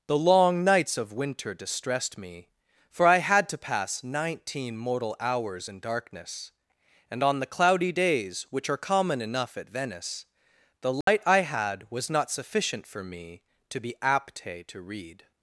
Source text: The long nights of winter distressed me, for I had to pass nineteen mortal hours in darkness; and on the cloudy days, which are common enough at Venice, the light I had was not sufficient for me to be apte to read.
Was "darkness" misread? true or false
false